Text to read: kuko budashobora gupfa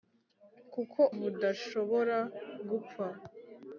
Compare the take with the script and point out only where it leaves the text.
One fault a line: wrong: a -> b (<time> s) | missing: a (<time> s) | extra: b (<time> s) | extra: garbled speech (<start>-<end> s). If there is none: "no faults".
no faults